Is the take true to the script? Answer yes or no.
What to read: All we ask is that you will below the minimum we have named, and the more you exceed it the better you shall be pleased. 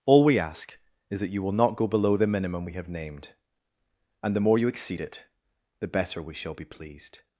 no